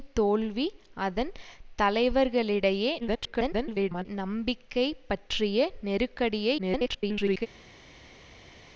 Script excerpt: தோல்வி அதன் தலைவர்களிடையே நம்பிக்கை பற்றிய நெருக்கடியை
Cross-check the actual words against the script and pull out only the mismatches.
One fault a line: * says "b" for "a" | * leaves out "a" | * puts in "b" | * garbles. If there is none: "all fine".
* garbles
* garbles